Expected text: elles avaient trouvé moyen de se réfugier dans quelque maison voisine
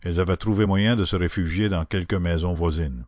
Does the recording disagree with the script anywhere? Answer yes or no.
no